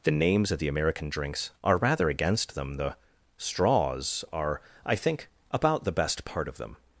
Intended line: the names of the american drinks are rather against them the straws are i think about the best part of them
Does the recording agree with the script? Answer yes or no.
yes